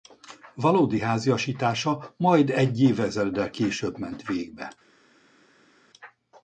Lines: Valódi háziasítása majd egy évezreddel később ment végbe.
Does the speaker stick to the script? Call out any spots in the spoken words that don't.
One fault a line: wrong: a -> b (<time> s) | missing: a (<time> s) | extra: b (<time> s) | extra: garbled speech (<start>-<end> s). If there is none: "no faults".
no faults